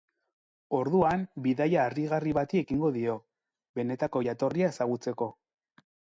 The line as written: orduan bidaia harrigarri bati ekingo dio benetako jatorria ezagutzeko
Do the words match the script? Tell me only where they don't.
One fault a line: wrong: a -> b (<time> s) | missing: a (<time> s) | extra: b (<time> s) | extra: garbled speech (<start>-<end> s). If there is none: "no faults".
no faults